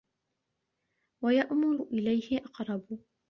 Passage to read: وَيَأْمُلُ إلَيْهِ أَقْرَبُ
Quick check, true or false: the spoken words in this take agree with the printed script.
true